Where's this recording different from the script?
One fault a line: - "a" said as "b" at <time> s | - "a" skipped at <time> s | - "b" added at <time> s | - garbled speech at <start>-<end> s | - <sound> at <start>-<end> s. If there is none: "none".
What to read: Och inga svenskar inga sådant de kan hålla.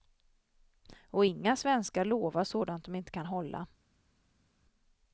- "inga" said as "lovar" at 2.0 s
- "inte" added at 2.9 s